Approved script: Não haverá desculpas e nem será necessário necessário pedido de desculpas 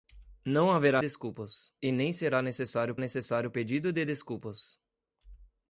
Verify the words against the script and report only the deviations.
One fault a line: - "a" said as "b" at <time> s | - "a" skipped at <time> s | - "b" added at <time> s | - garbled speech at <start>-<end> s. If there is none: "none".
none